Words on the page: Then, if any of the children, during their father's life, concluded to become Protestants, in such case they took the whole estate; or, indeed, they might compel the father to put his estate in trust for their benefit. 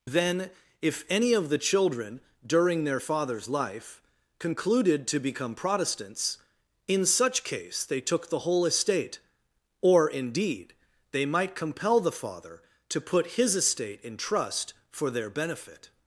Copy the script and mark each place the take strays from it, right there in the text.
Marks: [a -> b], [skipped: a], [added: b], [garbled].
Then, if any of the children, during their father's life, concluded to become Protestants, in such case they took the whole estate; or, indeed, they might compel the father to put his estate in trust for their benefit.